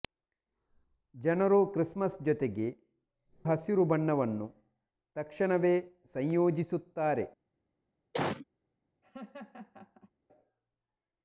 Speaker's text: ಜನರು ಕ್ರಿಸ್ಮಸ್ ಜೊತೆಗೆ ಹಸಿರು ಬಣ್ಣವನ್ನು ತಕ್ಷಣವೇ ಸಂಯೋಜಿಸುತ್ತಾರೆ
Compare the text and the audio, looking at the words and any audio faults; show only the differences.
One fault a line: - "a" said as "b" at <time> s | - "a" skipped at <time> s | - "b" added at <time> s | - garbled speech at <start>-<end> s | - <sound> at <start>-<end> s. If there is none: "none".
- cough at 8.1-8.5 s
- laugh at 9.0-10.1 s